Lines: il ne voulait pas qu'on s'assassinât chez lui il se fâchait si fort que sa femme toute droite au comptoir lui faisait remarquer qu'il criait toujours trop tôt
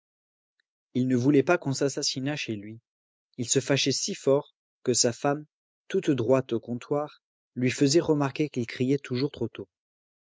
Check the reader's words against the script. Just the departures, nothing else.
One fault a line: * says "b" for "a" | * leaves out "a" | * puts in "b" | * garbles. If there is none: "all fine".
all fine